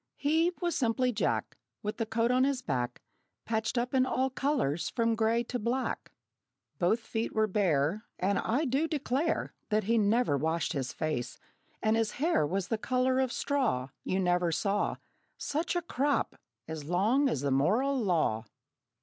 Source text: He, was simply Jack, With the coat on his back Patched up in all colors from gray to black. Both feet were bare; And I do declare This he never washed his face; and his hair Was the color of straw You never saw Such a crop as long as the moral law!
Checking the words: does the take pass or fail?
fail